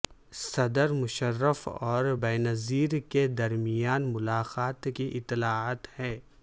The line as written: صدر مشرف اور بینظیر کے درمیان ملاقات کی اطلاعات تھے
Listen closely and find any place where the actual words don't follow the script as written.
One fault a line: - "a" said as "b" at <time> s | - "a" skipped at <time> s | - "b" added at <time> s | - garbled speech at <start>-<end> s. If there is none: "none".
- "تھے" said as "ہیں" at 6.0 s